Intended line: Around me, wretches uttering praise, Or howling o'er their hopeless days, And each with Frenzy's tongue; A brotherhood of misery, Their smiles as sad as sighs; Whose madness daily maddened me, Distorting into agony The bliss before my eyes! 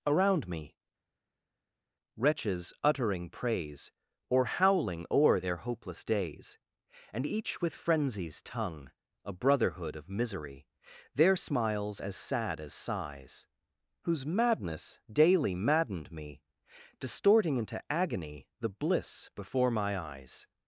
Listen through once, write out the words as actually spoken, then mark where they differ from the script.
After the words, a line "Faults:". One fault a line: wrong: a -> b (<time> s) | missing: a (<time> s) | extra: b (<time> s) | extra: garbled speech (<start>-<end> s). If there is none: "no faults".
Around me, wretches uttering praise, Or howling o'er their hopeless days, And each with Frenzy's tongue; A brotherhood of misery, Their smiles as sad as sighs; Whose madness daily maddened me, Distorting into agony The bliss before my eyes!
Faults:
no faults